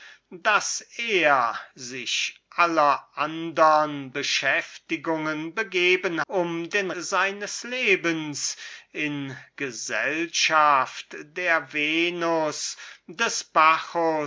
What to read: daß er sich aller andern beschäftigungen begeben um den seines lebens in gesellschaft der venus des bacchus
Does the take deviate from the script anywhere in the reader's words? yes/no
no